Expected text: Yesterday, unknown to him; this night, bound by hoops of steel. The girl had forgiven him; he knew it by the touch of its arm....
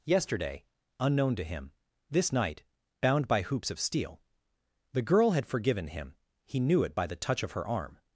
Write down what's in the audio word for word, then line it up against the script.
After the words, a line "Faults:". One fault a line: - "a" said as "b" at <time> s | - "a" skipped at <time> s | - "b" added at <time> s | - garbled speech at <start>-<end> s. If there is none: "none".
Yesterday, unknown to him; this night, bound by hoops of steel. The girl had forgiven him; he knew it by the touch of her arm....
Faults:
- "its" said as "her" at 7.5 s